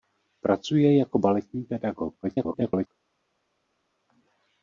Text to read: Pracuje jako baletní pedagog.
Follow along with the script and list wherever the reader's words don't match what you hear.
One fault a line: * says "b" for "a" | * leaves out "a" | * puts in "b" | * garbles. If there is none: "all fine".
* garbles